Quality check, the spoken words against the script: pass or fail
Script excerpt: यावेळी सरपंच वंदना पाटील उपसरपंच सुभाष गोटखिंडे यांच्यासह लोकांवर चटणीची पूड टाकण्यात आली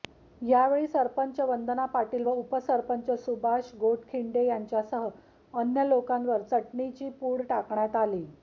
fail